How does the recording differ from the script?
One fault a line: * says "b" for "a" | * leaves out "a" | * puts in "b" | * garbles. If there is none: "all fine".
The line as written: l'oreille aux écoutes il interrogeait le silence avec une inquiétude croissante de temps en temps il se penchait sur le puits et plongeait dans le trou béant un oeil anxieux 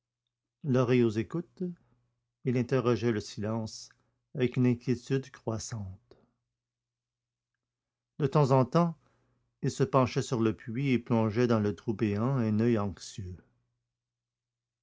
all fine